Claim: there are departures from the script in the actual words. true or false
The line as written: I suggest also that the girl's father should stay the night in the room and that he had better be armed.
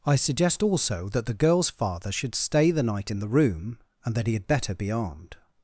false